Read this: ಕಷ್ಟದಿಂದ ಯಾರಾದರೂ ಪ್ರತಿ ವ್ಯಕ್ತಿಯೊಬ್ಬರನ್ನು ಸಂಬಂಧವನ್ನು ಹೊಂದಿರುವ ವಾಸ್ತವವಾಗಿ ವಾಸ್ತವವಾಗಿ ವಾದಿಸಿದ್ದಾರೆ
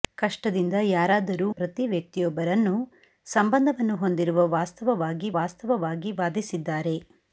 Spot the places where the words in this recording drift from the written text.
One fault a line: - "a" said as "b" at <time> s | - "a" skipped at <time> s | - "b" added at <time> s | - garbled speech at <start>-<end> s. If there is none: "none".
none